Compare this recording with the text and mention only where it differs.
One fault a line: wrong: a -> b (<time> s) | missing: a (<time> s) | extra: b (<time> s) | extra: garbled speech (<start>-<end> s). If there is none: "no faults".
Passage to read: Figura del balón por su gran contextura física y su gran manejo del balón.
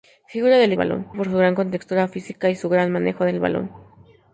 no faults